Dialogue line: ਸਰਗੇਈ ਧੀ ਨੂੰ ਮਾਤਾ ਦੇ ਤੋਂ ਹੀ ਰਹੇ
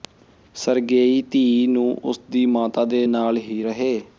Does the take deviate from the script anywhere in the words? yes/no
yes